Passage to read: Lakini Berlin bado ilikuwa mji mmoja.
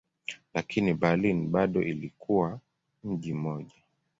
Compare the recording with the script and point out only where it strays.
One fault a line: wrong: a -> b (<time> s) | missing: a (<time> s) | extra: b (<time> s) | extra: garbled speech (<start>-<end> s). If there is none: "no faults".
no faults